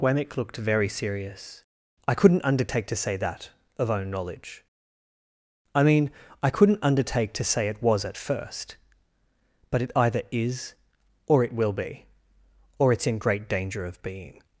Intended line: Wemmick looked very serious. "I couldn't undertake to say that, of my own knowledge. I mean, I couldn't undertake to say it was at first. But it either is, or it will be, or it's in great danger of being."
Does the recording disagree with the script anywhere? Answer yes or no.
yes